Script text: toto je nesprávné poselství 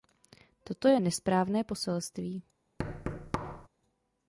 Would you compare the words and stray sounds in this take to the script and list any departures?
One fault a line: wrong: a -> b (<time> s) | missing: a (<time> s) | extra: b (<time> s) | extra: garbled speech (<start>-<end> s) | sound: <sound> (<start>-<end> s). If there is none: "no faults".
sound: thud (2.8-3.7 s)